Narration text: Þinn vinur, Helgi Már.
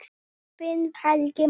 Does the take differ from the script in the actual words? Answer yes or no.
yes